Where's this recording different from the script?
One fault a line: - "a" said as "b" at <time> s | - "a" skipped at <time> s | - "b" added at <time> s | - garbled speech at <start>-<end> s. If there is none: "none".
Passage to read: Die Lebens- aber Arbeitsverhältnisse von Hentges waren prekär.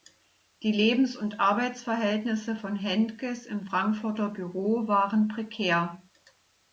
- "aber" said as "und" at 1.1 s
- "im Frankfurter Büro" added at 3.4 s